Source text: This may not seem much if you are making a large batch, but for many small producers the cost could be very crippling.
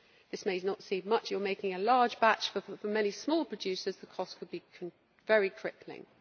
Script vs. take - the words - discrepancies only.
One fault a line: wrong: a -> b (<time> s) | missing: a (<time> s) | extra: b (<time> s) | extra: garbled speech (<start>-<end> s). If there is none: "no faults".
missing: if (1.3 s)